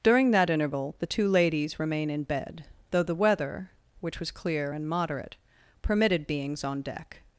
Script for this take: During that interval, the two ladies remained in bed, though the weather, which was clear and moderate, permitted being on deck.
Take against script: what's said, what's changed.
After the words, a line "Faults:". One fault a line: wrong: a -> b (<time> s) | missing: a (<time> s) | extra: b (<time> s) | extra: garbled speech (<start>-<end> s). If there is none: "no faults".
During that interval, the two ladies remain in bed, though the weather, which was clear and moderate, permitted beings on deck.
Faults:
wrong: remained -> remain (1.8 s)
wrong: being -> beings (6.3 s)